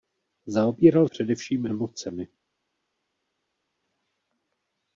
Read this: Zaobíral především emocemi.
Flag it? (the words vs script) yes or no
no